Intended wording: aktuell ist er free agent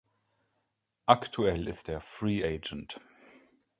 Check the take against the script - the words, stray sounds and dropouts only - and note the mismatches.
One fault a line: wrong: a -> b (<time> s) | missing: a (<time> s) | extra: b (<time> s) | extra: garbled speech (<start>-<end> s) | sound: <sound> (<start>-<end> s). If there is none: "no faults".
no faults